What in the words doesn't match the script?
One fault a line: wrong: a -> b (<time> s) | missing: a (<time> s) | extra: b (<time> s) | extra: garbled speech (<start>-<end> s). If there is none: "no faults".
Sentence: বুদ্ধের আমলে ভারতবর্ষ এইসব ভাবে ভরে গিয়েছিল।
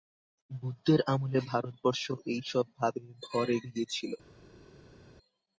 no faults